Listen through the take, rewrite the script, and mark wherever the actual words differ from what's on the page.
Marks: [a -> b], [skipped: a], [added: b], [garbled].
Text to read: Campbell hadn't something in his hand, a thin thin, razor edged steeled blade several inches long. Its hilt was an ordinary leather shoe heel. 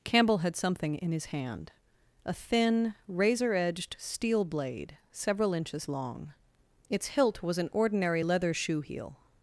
Campbell [hadn't -> had] something in his hand, a thin [skipped: thin,] razor edged [steeled -> steel] blade several inches long. Its hilt was an ordinary leather shoe heel.